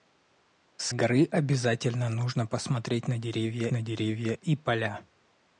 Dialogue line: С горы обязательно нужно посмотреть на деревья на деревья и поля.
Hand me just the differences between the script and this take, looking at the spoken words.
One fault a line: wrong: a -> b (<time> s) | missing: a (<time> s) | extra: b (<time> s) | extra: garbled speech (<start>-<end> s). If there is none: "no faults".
no faults